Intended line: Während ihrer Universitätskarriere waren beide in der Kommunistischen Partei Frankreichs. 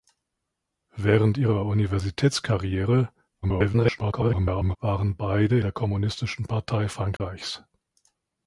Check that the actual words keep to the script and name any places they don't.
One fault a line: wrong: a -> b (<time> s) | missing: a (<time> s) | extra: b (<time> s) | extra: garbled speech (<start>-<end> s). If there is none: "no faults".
extra: garbled speech (3.4-4.8 s)
missing: in (5.6 s)